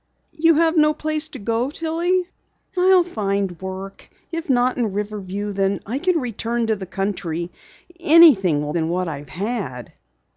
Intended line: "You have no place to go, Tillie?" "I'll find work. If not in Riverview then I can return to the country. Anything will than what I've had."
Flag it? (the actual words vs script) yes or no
no